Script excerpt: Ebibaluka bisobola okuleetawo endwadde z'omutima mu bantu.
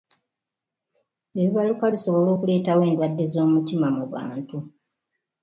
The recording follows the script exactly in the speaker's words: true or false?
true